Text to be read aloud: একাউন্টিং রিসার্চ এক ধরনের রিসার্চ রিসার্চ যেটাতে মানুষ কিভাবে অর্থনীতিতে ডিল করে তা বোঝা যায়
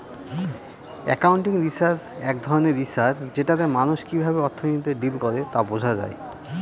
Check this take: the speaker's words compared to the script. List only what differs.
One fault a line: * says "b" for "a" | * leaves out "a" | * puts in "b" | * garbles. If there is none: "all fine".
* leaves out "রিসার্চ"